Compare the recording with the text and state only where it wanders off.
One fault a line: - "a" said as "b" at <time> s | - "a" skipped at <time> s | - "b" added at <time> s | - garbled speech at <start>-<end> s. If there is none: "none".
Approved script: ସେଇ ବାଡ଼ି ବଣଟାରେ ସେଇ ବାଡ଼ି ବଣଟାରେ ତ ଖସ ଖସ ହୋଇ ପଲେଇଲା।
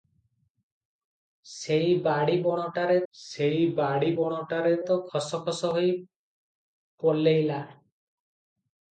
none